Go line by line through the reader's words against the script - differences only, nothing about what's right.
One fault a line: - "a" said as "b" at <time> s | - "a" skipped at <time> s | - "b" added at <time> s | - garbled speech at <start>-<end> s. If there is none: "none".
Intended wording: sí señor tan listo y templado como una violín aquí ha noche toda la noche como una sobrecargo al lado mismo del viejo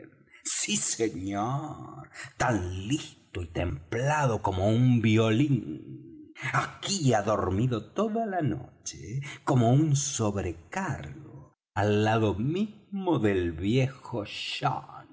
- "una" said as "un" at 4.7 s
- "noche" said as "dormido" at 7.2 s
- "una" said as "un" at 9.7 s